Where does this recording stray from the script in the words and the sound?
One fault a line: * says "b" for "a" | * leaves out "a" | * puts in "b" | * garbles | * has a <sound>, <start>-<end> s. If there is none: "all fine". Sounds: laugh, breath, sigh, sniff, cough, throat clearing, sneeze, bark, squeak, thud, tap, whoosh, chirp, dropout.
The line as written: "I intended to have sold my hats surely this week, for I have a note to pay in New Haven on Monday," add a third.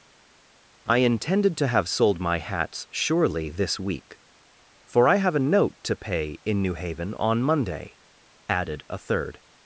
* says "added" for "add"